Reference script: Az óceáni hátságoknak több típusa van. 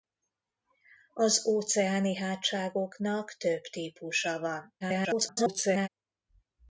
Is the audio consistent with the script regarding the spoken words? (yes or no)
no